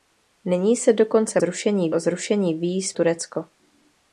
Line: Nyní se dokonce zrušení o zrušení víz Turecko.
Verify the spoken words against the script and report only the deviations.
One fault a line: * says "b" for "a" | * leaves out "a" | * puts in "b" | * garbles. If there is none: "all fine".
all fine